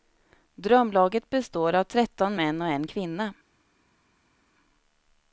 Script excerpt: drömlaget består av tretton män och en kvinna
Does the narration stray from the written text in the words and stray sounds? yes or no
no